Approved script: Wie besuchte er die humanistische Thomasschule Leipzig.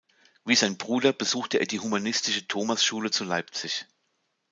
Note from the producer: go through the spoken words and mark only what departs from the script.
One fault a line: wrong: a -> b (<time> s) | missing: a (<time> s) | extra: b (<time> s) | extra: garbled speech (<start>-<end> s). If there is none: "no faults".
extra: sein Bruder (0.6 s)
extra: zu (3.1 s)